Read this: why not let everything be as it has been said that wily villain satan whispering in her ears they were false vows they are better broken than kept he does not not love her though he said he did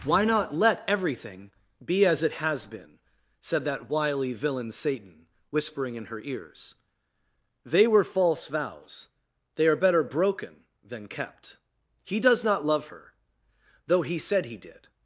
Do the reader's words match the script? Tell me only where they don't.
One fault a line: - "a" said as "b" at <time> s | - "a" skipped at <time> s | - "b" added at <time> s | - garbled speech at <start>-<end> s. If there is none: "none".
- "not" skipped at 12.7 s